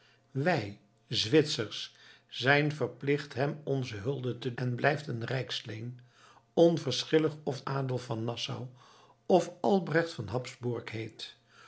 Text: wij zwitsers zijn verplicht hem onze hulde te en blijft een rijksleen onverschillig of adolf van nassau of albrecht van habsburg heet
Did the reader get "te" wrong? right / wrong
right